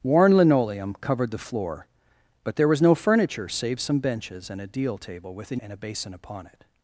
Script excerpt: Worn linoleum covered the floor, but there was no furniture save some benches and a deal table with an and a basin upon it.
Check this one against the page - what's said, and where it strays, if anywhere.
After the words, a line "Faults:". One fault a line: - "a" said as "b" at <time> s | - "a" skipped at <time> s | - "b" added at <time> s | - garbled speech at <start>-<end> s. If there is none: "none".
Worn linoleum covered the floor, but there was no furniture save some benches and a deal table with an and a basin upon it.
Faults:
none